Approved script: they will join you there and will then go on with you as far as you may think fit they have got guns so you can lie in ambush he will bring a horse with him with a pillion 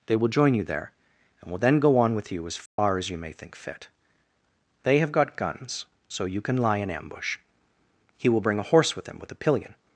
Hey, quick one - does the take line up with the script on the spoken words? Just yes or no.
yes